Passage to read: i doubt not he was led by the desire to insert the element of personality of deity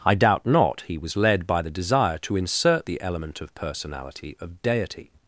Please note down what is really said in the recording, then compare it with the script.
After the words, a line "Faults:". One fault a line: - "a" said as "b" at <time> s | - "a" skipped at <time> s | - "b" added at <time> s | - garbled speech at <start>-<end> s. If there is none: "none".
i doubt not he was led by the desire to insert the element of personality of deity
Faults:
none